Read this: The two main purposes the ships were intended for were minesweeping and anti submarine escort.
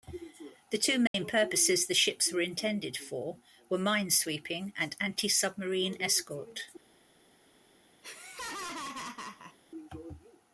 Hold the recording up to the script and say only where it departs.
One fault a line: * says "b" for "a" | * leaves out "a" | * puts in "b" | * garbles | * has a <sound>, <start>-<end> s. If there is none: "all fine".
* has a dropout, 1.1-1.1 s
* has a laugh, 8.0-9.6 s